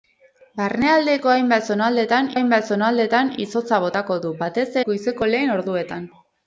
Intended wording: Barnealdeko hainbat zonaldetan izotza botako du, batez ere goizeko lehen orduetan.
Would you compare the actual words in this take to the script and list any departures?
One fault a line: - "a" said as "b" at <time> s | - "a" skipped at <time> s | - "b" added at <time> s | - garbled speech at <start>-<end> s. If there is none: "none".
- "hainbat zonaldetan" added at 2.3 s
- "ere" skipped at 4.7 s